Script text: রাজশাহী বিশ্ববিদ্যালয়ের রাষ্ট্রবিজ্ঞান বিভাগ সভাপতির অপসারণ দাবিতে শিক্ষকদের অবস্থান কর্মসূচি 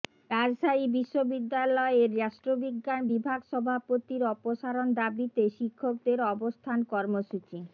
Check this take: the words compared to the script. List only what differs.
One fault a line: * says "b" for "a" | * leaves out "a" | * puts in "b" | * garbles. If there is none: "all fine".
all fine